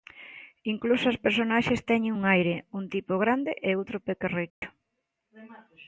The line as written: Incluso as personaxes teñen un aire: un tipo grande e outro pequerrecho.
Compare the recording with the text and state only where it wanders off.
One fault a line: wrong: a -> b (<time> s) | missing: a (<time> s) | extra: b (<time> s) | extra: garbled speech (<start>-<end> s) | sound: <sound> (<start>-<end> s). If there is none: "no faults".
sound: dropout (4.5-4.6 s)